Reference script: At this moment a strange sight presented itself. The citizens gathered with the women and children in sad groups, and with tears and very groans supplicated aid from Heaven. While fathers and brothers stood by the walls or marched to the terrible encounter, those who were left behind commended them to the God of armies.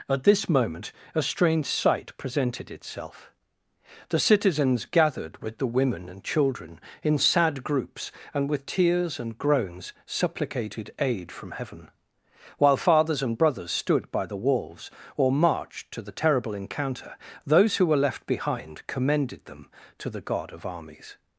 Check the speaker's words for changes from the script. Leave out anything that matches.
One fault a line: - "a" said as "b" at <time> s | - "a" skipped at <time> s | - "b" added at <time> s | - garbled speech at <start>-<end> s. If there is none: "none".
- "very" skipped at 9.4 s